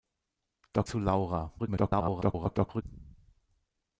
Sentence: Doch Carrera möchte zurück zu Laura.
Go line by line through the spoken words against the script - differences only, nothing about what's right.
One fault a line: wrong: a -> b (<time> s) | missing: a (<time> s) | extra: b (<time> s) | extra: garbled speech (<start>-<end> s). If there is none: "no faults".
missing: Carrera möchte zurück (0.9 s)
extra: garbled speech (1.6-2.8 s)